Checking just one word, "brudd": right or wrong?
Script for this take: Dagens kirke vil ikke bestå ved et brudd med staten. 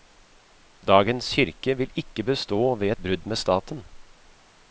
right